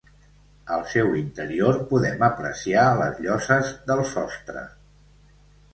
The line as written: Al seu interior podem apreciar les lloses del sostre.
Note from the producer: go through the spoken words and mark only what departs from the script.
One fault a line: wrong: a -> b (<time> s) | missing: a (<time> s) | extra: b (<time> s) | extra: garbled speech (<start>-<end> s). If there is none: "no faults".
no faults